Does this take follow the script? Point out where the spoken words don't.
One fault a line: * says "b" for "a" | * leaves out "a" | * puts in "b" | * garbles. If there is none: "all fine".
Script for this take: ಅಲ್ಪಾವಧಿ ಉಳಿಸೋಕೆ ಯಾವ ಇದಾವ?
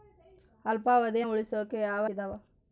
all fine